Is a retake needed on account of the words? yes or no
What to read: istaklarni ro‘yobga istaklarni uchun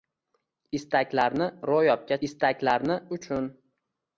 no